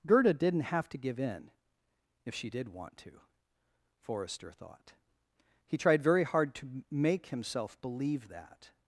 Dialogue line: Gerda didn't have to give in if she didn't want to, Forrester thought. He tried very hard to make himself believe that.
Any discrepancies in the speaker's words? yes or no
yes